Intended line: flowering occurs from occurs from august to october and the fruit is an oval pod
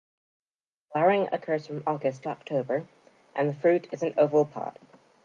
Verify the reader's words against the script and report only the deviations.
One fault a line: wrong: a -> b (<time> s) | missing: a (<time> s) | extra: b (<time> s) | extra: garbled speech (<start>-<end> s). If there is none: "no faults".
missing: occurs from (1.8 s)